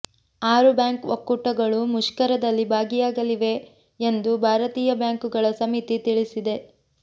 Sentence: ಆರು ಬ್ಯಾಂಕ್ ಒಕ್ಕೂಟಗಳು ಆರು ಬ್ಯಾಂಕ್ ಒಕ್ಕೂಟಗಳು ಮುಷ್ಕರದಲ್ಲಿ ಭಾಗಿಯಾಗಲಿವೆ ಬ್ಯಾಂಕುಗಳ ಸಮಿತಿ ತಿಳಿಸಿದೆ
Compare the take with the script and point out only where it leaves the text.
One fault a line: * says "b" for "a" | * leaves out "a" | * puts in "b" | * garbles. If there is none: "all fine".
* says "ಮುಷ್ಕರದಲ್ಲಿ ಭಾಗಿಯಾಗಲಿವೆ ಎಂದು ಭಾರತೀಯ" for "ಆರು ಬ್ಯಾಂಕ್ ಒಕ್ಕೂಟಗಳು ಮುಷ್ಕರದಲ್ಲಿ ಭಾಗಿಯಾಗಲಿವೆ"